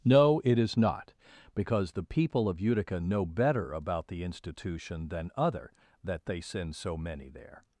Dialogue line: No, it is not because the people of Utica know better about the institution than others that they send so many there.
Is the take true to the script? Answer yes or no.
no